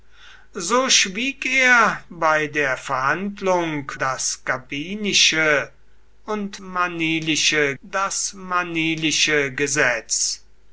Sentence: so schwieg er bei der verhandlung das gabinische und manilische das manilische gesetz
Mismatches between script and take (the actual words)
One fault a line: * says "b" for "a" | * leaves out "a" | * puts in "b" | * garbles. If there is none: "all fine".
all fine